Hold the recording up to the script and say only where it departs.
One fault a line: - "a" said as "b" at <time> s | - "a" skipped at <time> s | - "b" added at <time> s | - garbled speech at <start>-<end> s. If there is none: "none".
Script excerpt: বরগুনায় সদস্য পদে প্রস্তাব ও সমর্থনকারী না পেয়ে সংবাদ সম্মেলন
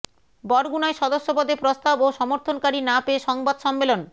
none